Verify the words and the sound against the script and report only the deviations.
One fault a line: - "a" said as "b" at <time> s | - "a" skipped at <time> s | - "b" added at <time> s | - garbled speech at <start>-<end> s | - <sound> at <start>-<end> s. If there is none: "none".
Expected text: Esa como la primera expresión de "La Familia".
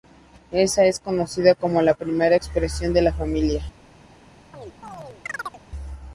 - "es conocida" added at 0.8 s
- chirp at 4.5-5.6 s